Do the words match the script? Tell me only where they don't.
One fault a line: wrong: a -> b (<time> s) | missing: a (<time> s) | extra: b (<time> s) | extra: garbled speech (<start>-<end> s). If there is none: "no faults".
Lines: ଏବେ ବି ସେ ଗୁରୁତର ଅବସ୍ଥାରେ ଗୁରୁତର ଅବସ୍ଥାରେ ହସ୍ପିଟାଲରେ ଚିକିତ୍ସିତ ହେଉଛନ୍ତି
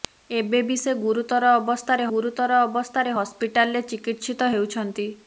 no faults